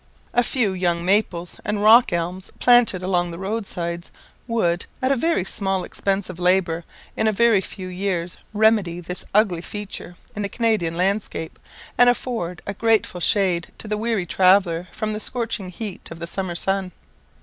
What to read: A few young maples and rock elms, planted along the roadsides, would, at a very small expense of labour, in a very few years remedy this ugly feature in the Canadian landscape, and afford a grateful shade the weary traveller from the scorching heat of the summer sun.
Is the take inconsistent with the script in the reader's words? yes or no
yes